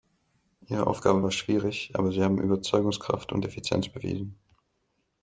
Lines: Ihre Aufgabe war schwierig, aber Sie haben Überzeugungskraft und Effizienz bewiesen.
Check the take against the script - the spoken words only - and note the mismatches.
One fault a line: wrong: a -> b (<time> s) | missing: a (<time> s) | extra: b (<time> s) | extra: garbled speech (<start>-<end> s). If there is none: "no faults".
no faults